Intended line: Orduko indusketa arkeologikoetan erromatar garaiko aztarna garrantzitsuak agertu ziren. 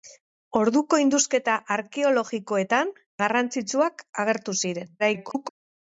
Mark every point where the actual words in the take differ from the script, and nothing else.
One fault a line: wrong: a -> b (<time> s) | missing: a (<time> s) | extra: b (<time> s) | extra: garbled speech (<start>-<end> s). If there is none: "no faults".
missing: erromatar garaiko aztarna (2.9 s)
extra: garbled speech (5.0-5.5 s)